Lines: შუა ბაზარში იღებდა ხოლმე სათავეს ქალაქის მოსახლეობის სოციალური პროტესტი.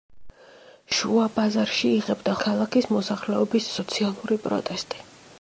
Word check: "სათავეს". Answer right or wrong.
wrong